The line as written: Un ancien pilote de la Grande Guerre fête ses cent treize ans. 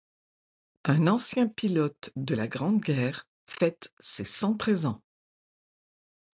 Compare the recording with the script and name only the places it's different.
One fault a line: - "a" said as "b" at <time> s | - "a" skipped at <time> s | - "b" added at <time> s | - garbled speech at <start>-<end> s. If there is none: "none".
none